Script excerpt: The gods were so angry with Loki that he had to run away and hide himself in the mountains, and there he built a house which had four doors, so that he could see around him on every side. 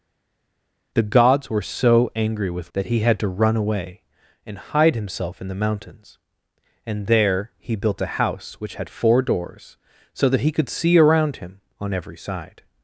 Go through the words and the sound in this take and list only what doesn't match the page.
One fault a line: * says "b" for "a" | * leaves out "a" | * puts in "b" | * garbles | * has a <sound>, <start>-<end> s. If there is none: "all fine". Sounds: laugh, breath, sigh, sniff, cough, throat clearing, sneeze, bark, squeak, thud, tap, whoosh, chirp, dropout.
* leaves out "Loki"